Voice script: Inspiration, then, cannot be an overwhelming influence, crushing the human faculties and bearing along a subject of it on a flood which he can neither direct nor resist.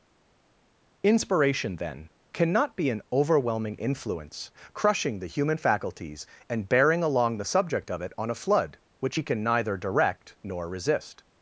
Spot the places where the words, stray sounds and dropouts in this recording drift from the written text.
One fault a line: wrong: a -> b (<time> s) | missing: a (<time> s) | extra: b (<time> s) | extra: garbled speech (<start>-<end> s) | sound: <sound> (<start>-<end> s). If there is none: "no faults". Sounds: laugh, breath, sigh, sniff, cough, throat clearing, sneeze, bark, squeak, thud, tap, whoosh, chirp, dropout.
wrong: a -> the (7.4 s)